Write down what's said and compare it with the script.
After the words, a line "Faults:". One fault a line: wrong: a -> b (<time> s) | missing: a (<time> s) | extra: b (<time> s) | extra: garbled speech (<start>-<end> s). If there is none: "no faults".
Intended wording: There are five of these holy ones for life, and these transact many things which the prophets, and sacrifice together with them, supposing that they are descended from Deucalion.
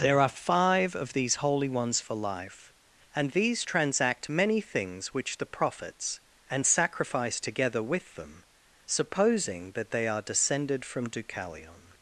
There are five of these holy ones for life, and these transact many things which the prophets, and sacrifice together with them, supposing that they are descended from Deucalion.
Faults:
no faults